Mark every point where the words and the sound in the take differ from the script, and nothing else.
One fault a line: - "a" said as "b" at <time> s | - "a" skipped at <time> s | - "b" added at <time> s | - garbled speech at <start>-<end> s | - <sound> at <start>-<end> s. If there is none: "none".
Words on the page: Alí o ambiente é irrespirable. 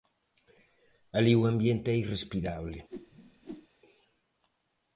- whoosh at 2.9-3.7 s